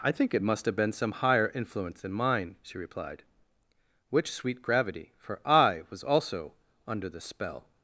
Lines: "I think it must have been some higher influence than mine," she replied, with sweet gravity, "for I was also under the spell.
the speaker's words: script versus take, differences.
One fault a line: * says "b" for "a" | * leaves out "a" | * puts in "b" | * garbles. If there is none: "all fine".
* says "which" for "with"